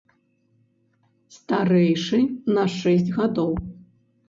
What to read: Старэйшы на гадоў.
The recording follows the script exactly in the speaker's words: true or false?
false